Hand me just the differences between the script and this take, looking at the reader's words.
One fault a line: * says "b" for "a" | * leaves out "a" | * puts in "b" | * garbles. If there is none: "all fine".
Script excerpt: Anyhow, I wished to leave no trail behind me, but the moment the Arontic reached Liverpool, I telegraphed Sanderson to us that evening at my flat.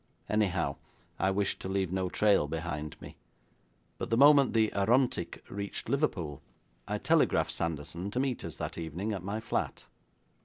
* puts in "meet"